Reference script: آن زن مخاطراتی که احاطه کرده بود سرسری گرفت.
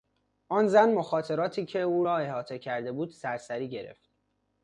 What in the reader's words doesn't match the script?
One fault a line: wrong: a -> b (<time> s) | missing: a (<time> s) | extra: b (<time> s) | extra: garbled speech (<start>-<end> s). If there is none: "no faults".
extra: او را (1.8 s)